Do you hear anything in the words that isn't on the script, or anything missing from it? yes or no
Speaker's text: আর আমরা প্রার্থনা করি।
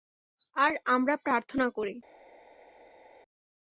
no